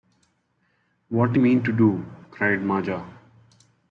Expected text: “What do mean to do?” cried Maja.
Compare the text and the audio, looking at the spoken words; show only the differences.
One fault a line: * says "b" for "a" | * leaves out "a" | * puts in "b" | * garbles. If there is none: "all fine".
all fine